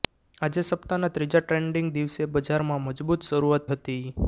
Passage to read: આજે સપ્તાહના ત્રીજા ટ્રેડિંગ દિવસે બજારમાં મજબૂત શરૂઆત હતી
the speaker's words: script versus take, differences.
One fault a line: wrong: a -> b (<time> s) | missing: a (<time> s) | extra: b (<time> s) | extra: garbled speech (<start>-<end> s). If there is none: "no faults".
no faults